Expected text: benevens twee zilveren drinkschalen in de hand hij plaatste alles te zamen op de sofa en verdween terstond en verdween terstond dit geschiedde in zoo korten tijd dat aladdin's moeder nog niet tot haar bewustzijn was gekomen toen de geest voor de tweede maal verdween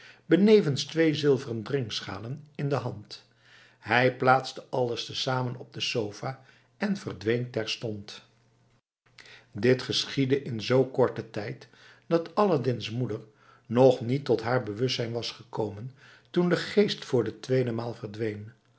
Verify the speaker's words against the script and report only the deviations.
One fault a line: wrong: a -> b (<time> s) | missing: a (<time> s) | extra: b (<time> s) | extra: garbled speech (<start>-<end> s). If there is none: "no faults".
missing: en verdween terstond (8.2 s)